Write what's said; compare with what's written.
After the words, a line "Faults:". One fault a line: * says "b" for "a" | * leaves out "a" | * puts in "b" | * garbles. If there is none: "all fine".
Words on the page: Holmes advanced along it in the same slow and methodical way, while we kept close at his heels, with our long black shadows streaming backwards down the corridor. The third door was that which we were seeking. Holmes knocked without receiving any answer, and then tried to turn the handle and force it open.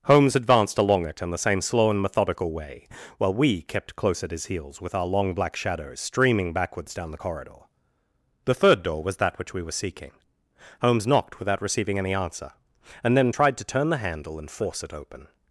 Holmes advanced along it in the same slow and methodical way, while we kept close at his heels, with our long black shadows streaming backwards down the corridor. The third door was that which we were seeking. Holmes knocked without receiving any answer, and then tried to turn the handle and force it open.
Faults:
all fine